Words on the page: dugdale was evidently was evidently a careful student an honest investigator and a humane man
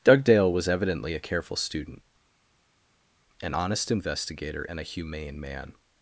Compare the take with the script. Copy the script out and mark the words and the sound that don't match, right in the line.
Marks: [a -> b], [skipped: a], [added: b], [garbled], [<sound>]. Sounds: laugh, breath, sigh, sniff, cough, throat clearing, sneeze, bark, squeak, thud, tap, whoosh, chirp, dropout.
dugdale was evidently [skipped: was evidently] a careful student an honest investigator and a humane man